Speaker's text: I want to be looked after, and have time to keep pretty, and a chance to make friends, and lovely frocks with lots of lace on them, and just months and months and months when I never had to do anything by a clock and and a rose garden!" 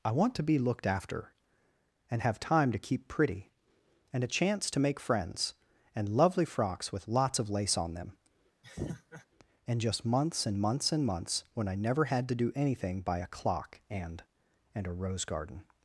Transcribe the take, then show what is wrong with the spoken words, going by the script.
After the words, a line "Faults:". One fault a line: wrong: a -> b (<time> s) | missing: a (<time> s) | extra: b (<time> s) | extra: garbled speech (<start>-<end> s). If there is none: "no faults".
I want to be looked after, and have time to keep pretty, and a chance to make friends, and lovely frocks with lots of lace on them, and just months and months and months when I never had to do anything by a clock and and a rose garden!"
Faults:
no faults